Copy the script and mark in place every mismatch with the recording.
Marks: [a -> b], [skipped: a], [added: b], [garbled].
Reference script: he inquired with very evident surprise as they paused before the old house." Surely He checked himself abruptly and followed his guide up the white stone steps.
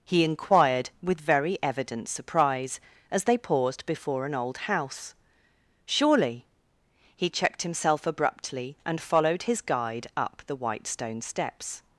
he inquired with very evident surprise as they paused before [the -> an] old house." Surely He checked himself abruptly and followed his guide up the white stone steps.